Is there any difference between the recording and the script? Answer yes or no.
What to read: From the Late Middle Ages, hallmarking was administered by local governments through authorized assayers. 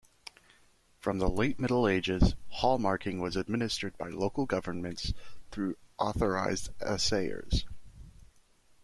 no